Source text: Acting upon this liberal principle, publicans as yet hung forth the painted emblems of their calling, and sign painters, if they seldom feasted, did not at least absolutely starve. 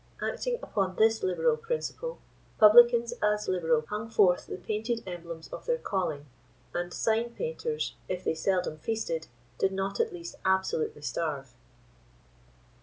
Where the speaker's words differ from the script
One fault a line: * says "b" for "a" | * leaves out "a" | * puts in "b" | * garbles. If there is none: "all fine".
* says "liberal" for "yet"